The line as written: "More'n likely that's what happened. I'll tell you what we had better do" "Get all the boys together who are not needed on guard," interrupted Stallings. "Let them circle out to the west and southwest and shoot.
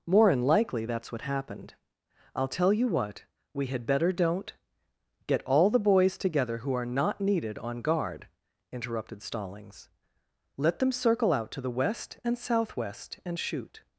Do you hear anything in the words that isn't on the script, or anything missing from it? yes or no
yes